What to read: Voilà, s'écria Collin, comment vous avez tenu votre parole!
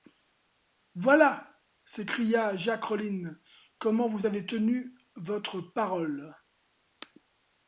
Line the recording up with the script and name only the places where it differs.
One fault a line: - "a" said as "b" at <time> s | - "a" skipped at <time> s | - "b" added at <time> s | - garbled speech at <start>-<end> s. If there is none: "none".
- "Jacques" added at 2.5 s